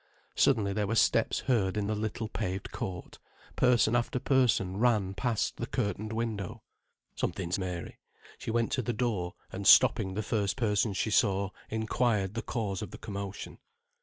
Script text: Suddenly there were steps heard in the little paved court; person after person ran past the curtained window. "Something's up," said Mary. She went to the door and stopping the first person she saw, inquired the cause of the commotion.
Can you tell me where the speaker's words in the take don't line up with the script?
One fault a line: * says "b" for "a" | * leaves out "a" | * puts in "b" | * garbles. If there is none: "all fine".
* leaves out "up said"